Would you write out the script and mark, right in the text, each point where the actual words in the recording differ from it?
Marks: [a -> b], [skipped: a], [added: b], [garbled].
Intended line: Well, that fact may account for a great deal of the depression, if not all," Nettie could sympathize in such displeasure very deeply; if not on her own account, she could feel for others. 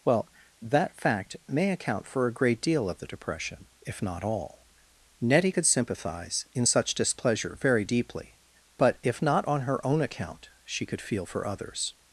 Well, that fact may account for a great deal of the depression, if not all," Nettie could sympathize in such displeasure very deeply; [added: but] if not on her own account, she could feel for others.